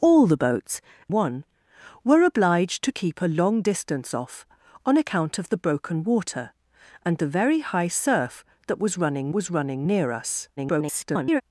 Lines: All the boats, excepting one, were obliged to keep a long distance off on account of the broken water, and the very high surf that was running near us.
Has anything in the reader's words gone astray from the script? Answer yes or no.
yes